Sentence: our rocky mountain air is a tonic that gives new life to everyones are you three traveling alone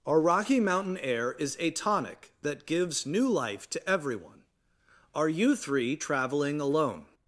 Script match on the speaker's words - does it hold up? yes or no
no